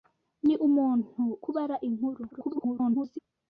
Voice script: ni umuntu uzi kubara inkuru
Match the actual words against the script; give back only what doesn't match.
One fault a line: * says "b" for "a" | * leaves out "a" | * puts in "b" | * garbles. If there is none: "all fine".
* leaves out "uzi"
* garbles